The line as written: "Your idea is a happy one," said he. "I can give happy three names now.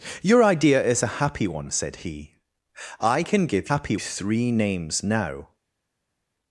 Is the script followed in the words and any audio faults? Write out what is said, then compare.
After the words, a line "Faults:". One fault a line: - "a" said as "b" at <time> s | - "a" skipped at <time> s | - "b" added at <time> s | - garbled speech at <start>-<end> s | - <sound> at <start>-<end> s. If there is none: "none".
"Your idea is a happy one," said he. "I can give happy three names now.
Faults:
none